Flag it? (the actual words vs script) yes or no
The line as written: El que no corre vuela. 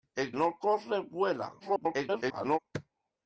yes